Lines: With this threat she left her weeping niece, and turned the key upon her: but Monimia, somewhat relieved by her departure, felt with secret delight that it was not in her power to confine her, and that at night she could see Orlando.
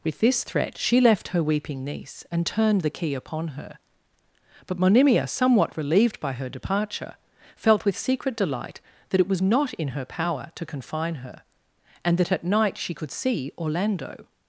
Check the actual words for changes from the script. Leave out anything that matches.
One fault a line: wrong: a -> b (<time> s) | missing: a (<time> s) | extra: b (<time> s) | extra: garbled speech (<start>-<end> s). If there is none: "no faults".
no faults